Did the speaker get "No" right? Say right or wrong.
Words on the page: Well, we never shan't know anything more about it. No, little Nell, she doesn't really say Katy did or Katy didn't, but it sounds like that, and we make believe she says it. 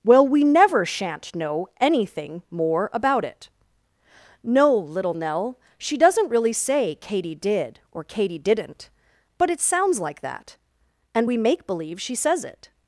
right